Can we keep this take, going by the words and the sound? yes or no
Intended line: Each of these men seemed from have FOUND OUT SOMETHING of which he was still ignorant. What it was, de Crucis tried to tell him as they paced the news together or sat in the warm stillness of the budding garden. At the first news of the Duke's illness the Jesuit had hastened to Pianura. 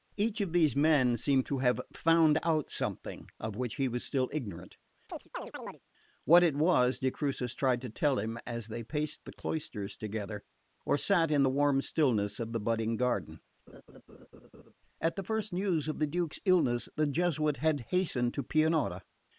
no